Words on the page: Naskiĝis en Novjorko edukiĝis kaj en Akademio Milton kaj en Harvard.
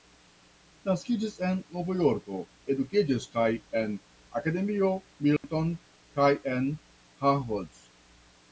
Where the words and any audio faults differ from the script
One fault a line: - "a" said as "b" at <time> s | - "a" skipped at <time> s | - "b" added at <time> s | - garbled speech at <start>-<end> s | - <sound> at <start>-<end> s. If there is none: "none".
- dropout at 5.4-5.4 s